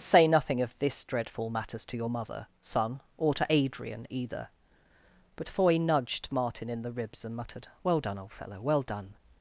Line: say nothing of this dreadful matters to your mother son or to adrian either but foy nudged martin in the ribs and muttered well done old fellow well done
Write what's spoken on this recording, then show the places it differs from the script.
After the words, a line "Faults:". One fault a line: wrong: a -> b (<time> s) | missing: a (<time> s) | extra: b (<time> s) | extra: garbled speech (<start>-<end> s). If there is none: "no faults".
say nothing of this dreadful matters to your mother son or to adrian either but foy nudged martin in the ribs and muttered well done old fellow well done
Faults:
no faults